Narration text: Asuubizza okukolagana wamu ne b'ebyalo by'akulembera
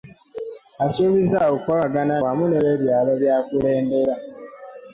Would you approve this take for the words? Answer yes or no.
yes